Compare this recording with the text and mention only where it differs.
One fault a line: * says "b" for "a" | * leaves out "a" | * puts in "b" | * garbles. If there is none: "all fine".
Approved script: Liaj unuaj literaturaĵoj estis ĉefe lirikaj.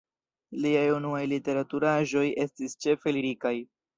all fine